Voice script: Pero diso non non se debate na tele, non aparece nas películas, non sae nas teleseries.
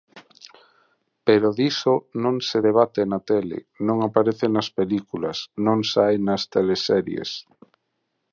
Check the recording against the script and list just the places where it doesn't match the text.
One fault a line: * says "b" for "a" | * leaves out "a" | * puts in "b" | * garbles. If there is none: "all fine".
* leaves out "non"